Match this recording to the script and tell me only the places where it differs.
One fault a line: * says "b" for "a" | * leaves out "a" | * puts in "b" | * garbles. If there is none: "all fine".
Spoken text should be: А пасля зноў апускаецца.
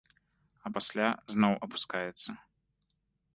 all fine